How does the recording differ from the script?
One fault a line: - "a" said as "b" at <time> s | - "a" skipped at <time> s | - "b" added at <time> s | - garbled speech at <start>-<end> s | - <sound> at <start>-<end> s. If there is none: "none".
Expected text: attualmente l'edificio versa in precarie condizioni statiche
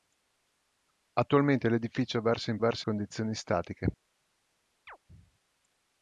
- "precarie" said as "versa" at 2.6 s
- chirp at 4.9-5.0 s